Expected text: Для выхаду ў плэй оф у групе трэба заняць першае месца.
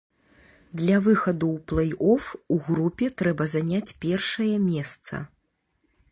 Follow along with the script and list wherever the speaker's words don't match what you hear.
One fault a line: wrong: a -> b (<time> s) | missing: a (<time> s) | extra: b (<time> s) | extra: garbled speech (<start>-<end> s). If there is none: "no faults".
no faults